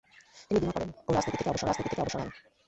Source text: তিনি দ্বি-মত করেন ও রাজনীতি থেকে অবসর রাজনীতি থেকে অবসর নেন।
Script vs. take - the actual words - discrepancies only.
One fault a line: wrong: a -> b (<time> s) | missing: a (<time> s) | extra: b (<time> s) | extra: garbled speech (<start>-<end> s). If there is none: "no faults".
no faults